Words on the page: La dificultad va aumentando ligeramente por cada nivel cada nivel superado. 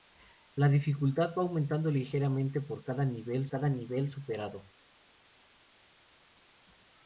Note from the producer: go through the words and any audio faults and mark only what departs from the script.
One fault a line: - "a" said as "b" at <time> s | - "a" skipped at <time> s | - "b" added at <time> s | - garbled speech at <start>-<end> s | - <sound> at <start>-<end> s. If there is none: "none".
none